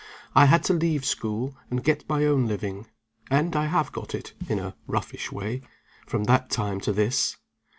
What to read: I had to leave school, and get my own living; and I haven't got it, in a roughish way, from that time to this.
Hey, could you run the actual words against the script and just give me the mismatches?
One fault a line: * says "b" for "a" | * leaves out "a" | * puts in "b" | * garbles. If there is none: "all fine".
* says "have" for "haven't"